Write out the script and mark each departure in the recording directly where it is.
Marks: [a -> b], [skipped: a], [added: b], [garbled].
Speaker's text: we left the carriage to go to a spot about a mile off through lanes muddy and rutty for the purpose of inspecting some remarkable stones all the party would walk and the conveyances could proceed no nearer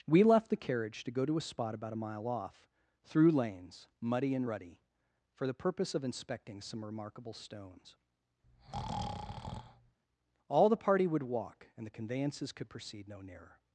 we left the carriage to go to a spot about a mile off through lanes muddy and rutty for the purpose of inspecting some remarkable stones all the party would walk and the conveyances could proceed no nearer